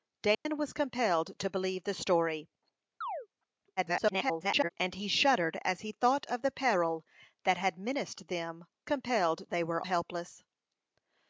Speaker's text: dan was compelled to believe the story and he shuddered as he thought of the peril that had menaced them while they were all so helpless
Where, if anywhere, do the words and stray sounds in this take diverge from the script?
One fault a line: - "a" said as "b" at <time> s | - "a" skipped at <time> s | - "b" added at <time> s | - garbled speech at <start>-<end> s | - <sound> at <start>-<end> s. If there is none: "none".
- dropout at 0.3-0.5 s
- chirp at 3.0-3.3 s
- garbled speech at 3.8-4.7 s
- "while" said as "compelled" at 8.8 s
- "all so" skipped at 9.8 s